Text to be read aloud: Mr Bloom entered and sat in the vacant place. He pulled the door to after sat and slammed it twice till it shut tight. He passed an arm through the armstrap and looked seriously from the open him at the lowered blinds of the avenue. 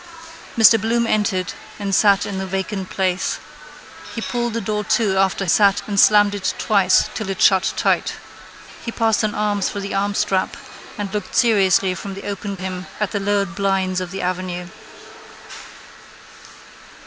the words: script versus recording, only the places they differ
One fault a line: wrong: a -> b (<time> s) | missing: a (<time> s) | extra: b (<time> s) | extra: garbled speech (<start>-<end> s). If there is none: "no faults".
no faults